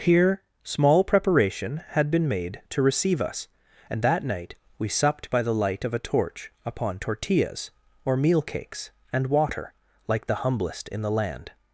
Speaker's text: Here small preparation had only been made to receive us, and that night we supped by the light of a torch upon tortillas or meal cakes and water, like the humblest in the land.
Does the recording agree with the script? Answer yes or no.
no